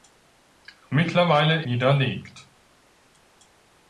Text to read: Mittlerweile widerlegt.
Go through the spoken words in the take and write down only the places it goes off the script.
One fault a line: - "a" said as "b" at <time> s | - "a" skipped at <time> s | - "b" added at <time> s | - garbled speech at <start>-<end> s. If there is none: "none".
none